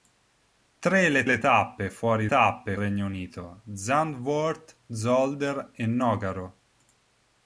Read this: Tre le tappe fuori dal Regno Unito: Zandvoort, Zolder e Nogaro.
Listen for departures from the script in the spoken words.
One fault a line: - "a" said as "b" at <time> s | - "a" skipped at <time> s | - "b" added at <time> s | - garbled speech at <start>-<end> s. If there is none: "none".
- "le" added at 1.2 s
- "dal" said as "tappe" at 2.3 s